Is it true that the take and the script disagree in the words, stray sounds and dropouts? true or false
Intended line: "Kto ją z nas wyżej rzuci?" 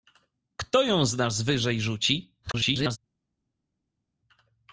true